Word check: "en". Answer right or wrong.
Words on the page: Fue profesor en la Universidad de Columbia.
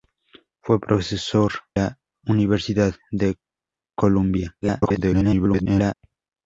wrong